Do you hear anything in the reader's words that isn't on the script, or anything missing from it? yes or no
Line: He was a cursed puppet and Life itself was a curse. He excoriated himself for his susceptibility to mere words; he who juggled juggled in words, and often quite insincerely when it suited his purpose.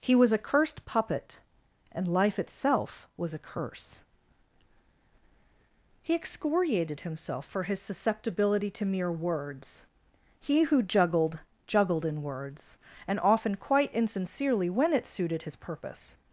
no